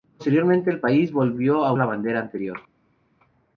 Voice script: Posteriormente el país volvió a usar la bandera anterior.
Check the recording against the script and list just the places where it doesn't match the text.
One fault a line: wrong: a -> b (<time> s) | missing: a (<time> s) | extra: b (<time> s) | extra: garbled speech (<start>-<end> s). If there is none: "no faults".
missing: usar (1.7 s)